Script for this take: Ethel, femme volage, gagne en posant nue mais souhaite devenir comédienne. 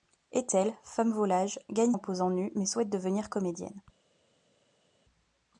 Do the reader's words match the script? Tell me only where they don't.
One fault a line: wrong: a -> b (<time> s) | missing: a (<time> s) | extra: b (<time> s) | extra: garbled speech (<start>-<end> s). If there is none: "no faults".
no faults